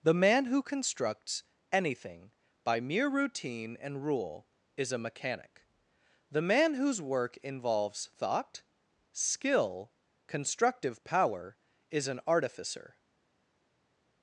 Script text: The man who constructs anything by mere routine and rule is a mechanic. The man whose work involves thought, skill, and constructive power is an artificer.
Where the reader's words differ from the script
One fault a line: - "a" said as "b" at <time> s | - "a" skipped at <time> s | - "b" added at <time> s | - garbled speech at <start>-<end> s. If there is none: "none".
- "and" skipped at 9.9 s